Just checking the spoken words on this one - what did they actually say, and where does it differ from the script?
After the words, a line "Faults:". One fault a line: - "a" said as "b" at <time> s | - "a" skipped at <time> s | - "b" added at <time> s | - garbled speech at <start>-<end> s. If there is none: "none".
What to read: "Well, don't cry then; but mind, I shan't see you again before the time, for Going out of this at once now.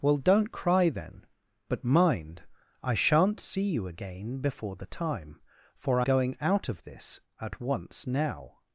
"Well, don't cry then; but mind, I shan't see you again before the time, for Going out of this at once now.
Faults:
none